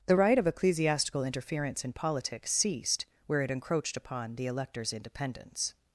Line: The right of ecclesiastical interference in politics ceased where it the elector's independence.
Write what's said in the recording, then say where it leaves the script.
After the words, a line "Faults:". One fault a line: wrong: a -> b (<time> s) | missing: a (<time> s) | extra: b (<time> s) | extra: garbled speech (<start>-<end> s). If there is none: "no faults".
The right of ecclesiastical interference in politics ceased where it encroached upon the elector's independence.
Faults:
extra: encroached upon (3.5 s)